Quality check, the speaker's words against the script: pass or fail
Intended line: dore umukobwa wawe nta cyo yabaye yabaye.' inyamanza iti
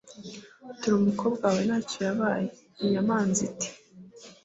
fail